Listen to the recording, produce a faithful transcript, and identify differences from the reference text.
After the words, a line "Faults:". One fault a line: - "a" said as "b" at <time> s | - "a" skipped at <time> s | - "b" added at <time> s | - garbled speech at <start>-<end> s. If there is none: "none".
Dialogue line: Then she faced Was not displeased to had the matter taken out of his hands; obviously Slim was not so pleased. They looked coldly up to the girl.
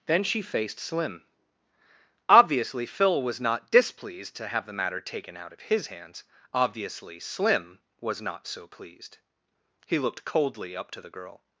Then she faced Slim. Obviously Phil was not displeased to have the matter taken out of his hands; obviously Slim was not so pleased. He looked coldly up to the girl.
Faults:
- "Slim Obviously Phil" added at 0.8 s
- "had" said as "have" at 4.5 s
- "They" said as "He" at 9.8 s